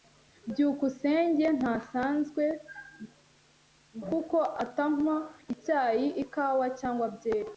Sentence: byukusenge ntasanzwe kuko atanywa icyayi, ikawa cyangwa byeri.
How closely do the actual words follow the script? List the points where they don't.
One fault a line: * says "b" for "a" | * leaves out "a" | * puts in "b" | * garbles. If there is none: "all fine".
all fine